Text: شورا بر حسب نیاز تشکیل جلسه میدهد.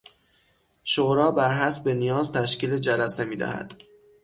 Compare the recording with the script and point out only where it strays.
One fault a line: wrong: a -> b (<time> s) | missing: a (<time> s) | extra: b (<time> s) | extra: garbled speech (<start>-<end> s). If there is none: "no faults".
no faults